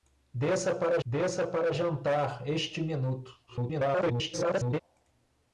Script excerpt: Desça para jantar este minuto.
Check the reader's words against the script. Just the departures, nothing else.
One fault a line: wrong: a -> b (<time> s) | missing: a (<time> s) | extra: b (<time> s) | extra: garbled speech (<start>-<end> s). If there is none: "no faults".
extra: desça para (1.0 s)
extra: garbled speech (3.5-4.8 s)